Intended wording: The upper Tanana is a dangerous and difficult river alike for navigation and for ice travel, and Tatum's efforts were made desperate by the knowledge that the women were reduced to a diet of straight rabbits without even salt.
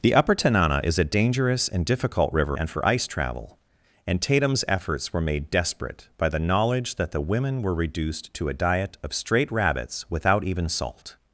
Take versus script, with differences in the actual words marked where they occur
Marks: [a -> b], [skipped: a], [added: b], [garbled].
The upper Tanana is a dangerous and difficult river [skipped: alike for navigation] and for ice travel, and Tatum's efforts were made desperate by the knowledge that the women were reduced to a diet of straight rabbits without even salt.